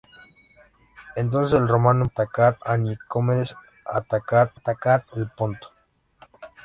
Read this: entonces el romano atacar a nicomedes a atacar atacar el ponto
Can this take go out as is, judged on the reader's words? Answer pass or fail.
pass